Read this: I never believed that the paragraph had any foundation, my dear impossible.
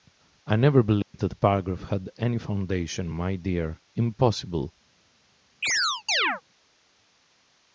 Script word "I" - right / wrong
right